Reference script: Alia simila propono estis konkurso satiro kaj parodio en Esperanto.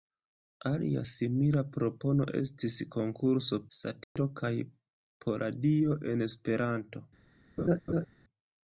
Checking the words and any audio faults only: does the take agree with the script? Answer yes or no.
no